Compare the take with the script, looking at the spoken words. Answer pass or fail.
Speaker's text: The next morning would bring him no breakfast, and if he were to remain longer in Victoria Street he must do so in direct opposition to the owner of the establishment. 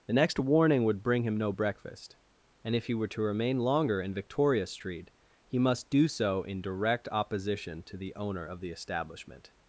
fail